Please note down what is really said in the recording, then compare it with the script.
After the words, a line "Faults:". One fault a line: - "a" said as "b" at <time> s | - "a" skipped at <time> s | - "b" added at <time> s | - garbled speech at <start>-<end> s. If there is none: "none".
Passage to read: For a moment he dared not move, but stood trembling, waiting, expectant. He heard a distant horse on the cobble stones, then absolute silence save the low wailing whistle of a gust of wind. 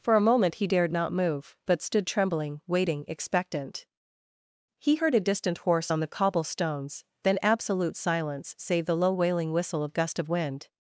For a moment he dared not move, but stood trembling, waiting, expectant. He heard a distant horse on the cobble stones, then absolute silence save the low wailing whistle of gust of wind.
Faults:
- "a" skipped at 9.9 s